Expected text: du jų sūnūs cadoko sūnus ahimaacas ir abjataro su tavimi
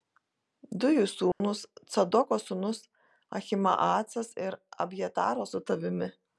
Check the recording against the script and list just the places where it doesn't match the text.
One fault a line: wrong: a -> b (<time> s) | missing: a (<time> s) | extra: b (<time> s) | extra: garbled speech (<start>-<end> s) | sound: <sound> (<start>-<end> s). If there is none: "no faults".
sound: dropout (1.3-1.4 s)